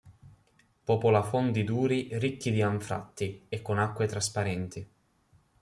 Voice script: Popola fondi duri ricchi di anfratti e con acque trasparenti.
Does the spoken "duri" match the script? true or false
true